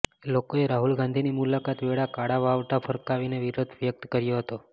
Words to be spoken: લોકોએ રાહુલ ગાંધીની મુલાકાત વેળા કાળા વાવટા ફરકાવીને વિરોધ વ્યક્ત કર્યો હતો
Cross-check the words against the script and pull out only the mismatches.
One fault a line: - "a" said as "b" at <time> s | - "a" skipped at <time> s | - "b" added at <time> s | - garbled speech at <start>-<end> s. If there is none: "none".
none